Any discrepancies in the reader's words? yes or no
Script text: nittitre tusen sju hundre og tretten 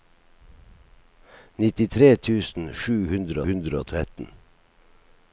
yes